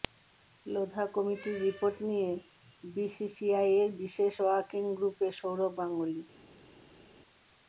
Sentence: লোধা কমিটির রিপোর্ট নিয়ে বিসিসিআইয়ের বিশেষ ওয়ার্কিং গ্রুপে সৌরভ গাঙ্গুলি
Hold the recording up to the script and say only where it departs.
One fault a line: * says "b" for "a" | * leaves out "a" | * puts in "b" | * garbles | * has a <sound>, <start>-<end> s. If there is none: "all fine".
all fine